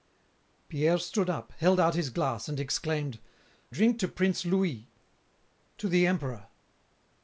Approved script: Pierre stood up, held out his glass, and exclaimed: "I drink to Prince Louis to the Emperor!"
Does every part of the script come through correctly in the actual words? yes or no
no